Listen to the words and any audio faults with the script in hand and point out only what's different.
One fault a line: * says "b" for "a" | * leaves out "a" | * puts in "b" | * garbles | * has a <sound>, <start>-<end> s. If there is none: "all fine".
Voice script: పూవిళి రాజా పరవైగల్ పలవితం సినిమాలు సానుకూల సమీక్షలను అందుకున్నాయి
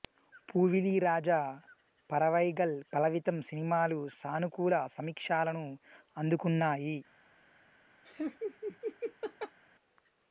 * has a laugh, 8.0-9.6 s